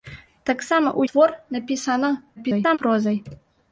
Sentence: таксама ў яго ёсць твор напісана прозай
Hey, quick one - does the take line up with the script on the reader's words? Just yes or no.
no